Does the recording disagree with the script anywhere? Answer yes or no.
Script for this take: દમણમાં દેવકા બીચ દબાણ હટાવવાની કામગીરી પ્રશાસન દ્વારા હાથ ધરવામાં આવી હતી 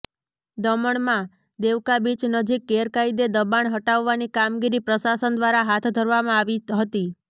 yes